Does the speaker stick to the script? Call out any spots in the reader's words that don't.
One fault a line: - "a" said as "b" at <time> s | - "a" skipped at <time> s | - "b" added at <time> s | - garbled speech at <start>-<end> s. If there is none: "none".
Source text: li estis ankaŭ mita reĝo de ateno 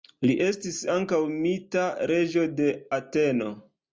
none